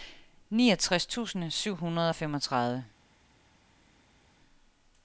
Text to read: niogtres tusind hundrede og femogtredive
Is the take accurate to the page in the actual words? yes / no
no